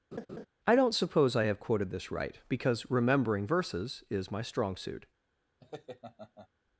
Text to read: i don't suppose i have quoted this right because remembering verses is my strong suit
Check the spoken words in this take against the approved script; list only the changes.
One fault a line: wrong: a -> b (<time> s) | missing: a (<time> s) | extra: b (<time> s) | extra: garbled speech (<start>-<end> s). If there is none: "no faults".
no faults